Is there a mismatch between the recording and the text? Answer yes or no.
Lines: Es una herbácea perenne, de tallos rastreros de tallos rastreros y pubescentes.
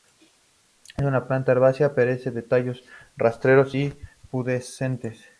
yes